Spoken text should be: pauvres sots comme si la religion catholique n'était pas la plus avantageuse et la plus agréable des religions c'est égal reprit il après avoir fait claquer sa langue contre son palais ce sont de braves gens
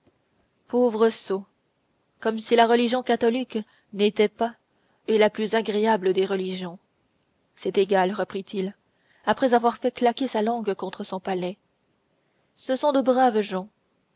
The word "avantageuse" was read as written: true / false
false